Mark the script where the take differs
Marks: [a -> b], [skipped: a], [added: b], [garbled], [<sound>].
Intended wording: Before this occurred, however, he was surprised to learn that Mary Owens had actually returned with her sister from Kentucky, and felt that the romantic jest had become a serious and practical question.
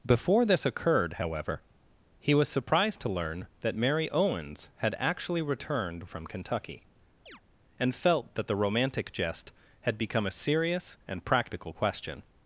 Before this occurred, however, he was surprised to learn that Mary Owens had actually returned [skipped: with her sister] from Kentucky, [chirp] and felt that the romantic jest had become a serious and practical question.